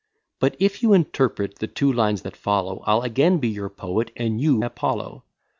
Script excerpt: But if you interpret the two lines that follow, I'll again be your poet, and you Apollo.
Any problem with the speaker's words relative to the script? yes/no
no